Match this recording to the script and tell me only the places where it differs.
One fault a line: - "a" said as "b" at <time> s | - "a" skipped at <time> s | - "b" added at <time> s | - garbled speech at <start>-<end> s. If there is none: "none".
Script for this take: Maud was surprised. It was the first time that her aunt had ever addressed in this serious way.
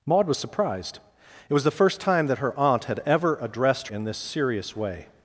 none